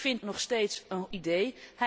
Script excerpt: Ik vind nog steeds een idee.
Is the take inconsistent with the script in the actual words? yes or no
no